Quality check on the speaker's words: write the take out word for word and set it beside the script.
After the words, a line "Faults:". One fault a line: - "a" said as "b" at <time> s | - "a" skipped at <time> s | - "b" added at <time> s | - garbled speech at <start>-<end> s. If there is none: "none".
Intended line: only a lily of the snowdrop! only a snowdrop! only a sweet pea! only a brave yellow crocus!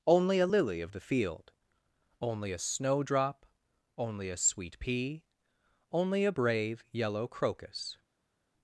only a lily of the field! only a snowdrop! only a sweet pea! only a brave yellow crocus!
Faults:
- "snowdrop" said as "field" at 1.0 s